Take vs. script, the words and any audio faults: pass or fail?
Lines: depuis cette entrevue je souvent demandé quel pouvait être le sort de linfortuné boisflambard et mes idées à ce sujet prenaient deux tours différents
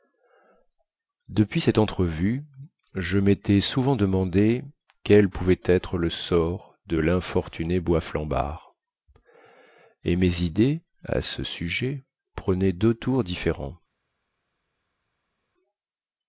fail